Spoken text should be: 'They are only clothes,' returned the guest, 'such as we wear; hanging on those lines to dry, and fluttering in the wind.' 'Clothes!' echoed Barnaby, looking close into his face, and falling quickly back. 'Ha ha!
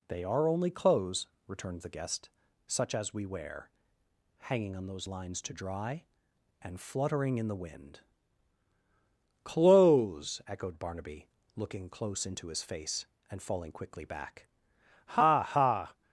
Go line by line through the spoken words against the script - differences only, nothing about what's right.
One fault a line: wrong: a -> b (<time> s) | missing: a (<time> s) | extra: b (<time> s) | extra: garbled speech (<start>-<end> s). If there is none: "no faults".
no faults